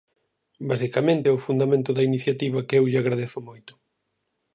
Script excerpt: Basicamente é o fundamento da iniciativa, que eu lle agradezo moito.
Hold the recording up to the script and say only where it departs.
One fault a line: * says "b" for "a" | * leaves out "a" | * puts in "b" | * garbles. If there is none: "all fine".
all fine